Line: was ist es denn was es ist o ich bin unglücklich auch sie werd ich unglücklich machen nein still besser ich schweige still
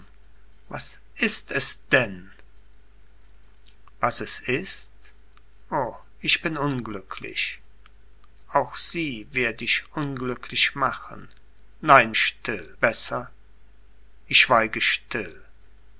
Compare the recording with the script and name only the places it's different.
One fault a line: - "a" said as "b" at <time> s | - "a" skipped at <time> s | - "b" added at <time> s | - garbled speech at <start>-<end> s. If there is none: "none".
none